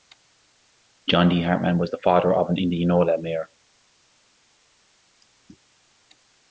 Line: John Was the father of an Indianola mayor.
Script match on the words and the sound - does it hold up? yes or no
no